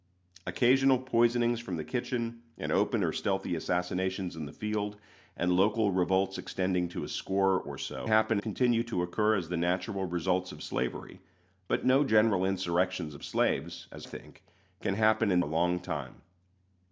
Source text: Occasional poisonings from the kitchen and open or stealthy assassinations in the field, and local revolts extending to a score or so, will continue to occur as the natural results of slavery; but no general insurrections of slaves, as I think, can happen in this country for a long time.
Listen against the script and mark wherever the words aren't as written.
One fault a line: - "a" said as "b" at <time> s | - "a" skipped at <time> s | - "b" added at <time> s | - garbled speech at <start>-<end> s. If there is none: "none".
- "will" said as "happen" at 8.0 s
- "I" skipped at 14.1 s
- "this country for" skipped at 15.4 s